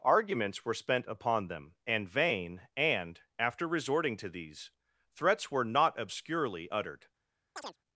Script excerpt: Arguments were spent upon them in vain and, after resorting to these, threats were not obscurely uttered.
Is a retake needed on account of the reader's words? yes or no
yes